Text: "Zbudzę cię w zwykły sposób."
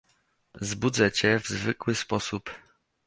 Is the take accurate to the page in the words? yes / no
yes